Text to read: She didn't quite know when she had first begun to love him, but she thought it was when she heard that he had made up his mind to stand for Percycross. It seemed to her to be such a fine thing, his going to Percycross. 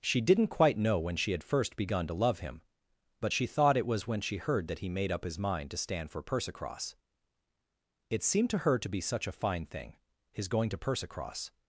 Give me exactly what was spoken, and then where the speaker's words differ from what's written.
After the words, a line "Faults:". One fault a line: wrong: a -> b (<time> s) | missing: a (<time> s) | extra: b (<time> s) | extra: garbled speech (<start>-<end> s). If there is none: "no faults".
She didn't quite know when she had first begun to love him, but she thought it was when she heard that he made up his mind to stand for Percycross. It seemed to her to be such a fine thing, his going to Percycross.
Faults:
missing: had (4.9 s)